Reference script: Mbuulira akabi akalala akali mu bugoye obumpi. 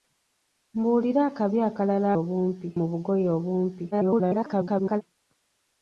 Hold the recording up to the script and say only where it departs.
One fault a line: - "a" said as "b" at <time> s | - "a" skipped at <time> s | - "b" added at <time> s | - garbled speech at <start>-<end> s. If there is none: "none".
- "akali" said as "obumpi" at 2.2 s
- garbled speech at 3.9-5.0 s